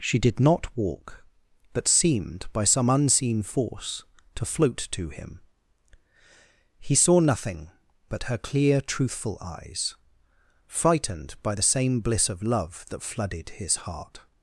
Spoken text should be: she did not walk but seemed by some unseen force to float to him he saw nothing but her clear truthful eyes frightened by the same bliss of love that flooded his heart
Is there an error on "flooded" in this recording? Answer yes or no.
no